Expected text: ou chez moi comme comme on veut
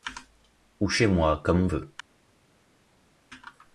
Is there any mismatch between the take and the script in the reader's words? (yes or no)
yes